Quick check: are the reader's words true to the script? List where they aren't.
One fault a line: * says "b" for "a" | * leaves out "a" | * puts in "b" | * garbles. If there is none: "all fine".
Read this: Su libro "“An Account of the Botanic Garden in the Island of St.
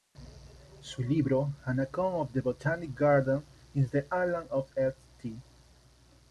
all fine